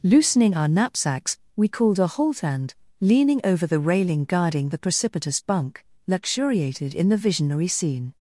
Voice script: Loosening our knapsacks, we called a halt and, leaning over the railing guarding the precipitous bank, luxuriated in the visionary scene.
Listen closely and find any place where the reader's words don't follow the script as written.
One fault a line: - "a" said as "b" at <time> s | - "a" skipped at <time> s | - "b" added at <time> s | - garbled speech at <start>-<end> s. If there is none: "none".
- "bank" said as "bunk" at 5.4 s